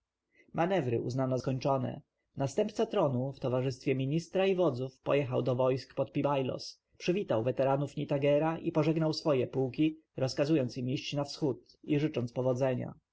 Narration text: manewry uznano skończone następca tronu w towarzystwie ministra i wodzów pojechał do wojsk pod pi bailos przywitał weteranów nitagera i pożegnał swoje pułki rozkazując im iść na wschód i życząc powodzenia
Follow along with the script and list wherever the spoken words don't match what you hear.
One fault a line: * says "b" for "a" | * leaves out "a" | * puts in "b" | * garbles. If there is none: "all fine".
all fine